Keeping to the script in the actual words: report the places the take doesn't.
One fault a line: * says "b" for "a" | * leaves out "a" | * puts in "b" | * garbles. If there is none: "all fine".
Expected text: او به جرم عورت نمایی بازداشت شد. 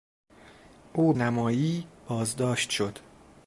* leaves out "به جرم عورت"